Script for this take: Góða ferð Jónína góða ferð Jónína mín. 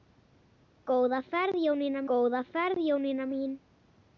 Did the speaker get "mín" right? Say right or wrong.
right